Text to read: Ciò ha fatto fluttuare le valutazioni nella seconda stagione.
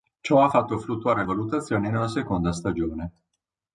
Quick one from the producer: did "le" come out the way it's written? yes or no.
no